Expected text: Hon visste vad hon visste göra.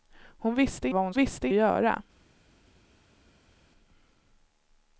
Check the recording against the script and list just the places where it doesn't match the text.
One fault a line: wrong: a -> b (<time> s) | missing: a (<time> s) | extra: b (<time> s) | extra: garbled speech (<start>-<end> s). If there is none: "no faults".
no faults